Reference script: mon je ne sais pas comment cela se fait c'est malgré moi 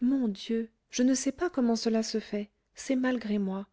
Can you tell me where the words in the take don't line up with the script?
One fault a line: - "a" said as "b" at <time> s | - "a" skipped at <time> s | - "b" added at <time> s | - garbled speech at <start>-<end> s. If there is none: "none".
- "dieu" added at 0.3 s